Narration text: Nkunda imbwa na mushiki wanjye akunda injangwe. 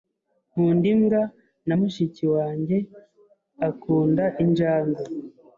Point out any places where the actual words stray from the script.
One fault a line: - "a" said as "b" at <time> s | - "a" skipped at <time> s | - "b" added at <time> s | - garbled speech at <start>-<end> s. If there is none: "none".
none